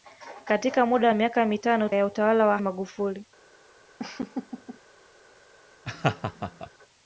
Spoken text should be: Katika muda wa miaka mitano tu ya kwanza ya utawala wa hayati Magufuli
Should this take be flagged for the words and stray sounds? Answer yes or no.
yes